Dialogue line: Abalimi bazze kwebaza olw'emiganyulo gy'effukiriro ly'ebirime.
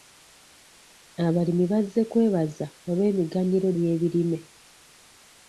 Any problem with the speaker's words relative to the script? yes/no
yes